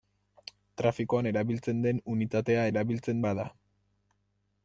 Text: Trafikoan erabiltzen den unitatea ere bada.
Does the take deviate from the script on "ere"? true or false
true